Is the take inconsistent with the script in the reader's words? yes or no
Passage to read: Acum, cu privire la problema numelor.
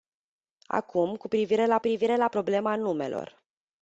yes